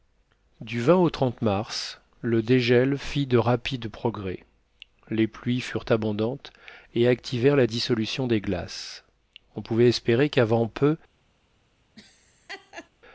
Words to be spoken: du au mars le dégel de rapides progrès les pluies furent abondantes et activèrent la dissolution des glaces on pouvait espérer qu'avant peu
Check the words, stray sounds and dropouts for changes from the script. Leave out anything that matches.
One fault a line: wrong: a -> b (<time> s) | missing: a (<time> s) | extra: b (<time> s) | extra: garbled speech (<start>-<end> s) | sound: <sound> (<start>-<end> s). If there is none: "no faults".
extra: fit (3.0 s)
sound: laugh (12.0-12.9 s)